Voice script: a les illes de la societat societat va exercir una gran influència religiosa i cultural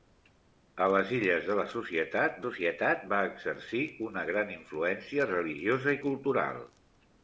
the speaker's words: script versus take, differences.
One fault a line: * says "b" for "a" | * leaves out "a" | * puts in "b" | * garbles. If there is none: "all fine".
all fine